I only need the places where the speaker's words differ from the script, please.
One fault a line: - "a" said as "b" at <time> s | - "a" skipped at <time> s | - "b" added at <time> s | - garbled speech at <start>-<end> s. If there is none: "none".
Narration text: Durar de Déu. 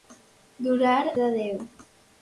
none